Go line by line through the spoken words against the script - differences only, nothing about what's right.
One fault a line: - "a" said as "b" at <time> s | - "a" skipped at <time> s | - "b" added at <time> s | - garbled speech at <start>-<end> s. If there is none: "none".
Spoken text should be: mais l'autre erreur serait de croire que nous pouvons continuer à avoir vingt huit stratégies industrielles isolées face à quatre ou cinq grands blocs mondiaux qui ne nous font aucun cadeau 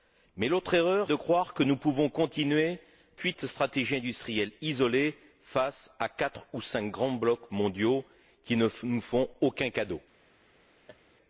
- "serait" skipped at 1.1 s
- "à avoir vingt" skipped at 2.8 s